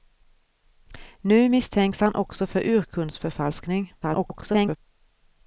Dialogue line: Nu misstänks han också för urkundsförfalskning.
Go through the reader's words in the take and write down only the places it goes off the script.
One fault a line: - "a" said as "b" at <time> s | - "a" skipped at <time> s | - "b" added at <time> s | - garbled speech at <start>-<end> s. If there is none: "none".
- garbled speech at 4.0-4.8 s